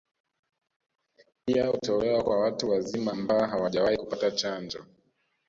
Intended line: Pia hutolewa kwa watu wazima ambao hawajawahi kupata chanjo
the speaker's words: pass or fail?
pass